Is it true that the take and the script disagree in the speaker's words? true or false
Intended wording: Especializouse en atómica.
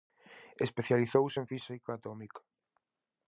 true